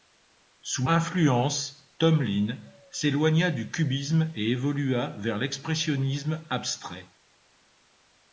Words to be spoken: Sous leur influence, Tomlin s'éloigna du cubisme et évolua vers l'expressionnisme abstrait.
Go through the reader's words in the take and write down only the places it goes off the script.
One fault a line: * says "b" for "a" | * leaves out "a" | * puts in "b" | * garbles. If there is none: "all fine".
* leaves out "leur"